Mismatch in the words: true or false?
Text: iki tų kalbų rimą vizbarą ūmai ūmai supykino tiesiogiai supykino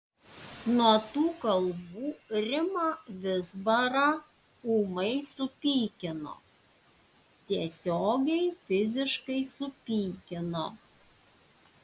true